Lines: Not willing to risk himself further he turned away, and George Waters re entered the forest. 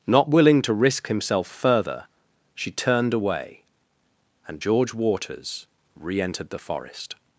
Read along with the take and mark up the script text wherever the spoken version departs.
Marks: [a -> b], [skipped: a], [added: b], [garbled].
Not willing to risk himself further [he -> she] turned away, and George Waters re entered the forest.